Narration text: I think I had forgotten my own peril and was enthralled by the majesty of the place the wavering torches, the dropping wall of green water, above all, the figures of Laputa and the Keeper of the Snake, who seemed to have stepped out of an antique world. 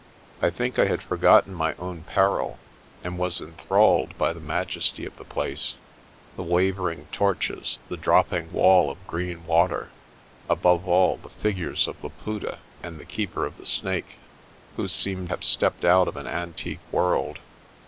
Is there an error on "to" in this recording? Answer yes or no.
yes